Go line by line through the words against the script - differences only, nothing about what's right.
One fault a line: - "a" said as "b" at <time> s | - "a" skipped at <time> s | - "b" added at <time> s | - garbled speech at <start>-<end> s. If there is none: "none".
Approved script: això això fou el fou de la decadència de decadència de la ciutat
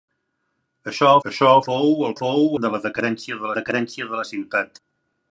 none